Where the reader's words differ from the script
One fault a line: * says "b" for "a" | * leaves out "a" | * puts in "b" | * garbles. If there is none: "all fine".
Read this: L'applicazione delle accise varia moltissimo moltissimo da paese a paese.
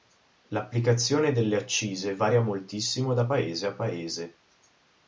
* leaves out "moltissimo"